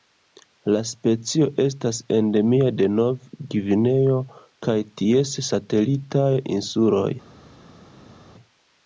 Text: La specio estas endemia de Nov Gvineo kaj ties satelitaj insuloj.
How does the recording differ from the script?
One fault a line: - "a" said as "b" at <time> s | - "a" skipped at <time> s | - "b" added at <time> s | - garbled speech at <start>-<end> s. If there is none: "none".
none